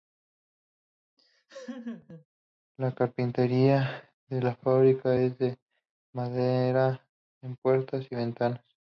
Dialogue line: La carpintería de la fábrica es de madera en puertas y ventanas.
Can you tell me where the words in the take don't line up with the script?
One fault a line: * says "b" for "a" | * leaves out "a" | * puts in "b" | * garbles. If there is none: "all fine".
all fine